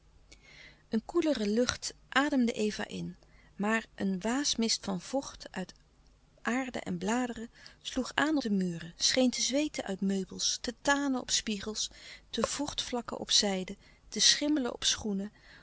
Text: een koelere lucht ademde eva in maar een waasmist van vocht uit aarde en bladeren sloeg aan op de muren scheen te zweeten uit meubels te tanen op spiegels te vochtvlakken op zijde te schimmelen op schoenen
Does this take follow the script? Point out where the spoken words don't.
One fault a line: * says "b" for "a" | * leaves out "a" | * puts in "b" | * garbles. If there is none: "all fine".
* leaves out "op"